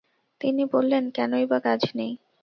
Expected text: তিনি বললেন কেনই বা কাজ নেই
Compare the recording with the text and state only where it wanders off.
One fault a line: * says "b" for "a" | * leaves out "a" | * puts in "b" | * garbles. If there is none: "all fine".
all fine